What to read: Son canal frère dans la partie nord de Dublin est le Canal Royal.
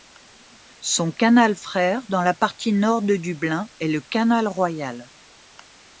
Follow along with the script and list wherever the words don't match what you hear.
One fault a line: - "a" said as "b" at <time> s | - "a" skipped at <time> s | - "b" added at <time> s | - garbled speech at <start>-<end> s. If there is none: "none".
none